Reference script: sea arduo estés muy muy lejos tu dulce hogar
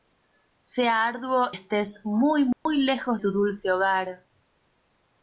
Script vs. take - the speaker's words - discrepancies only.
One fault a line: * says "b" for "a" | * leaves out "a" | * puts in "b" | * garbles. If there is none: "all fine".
all fine